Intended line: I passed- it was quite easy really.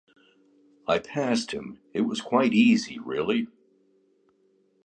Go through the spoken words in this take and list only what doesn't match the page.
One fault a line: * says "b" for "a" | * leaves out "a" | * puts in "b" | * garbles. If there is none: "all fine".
* puts in "him"